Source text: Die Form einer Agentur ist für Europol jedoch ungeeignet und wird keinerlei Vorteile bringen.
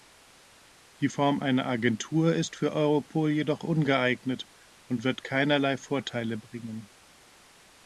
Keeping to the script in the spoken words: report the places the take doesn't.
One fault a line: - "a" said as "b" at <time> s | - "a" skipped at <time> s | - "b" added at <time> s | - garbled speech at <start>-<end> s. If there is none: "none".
none